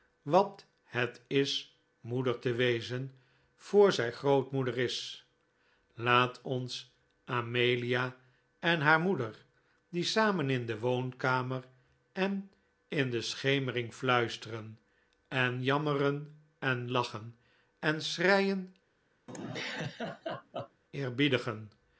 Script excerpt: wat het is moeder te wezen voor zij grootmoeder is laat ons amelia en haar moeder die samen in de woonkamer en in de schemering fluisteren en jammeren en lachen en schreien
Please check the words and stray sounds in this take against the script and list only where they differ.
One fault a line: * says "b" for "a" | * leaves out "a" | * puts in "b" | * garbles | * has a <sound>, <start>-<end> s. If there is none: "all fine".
* has a laugh, 19.3-20.8 s